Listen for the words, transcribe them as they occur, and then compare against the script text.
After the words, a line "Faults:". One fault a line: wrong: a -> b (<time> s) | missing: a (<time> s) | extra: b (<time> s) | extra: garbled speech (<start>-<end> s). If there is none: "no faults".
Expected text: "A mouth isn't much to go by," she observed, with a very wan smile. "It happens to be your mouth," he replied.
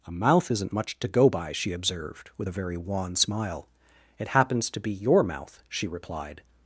"A mouth isn't much to go by," she observed, with a very wan smile. "It happens to be your mouth," she replied.
Faults:
wrong: he -> she (5.7 s)